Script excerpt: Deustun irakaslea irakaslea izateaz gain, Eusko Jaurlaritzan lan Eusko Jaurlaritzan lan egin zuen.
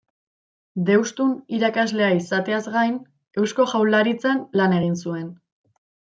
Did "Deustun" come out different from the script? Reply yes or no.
no